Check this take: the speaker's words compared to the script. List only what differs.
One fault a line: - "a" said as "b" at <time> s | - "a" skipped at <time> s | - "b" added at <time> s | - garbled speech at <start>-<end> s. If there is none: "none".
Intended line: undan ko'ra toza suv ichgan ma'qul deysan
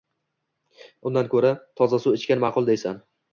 none